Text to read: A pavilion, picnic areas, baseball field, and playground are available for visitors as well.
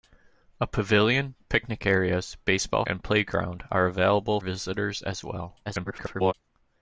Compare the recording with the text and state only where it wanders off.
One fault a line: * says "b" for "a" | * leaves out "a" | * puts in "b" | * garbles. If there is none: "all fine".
* leaves out "field"
* leaves out "for"
* garbles